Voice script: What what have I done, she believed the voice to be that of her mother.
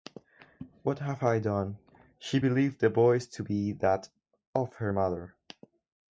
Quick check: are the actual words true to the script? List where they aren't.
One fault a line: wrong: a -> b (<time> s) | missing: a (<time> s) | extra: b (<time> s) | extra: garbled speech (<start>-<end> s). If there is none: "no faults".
missing: what (1.0 s)